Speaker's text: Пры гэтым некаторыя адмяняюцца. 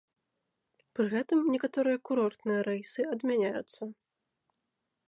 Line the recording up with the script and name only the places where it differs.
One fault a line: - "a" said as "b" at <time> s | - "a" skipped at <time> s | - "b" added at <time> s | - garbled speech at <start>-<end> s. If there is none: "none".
- "курортныя рэйсы" added at 2.1 s